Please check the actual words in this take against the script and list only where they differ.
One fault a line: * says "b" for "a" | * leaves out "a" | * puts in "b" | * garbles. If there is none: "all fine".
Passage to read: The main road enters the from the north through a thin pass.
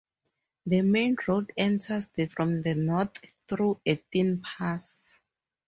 all fine